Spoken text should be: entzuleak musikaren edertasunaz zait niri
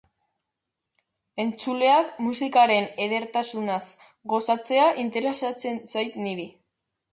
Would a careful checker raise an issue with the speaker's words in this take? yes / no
yes